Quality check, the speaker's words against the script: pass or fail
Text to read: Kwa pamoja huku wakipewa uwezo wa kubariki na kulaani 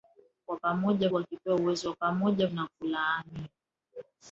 fail